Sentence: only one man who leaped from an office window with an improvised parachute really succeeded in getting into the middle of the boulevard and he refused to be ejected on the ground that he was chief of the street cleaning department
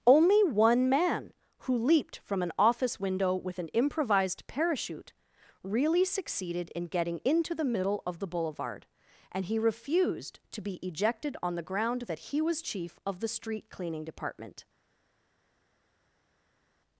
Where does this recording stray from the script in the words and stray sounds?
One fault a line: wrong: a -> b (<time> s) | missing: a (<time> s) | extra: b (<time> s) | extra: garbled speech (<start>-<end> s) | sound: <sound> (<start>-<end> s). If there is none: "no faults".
no faults